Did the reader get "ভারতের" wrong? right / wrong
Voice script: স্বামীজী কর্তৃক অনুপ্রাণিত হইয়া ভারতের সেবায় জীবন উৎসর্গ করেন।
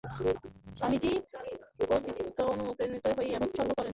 wrong